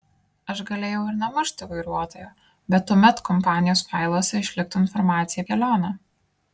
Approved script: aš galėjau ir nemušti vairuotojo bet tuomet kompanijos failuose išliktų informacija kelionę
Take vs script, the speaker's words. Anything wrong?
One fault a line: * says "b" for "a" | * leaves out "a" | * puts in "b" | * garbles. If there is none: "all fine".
all fine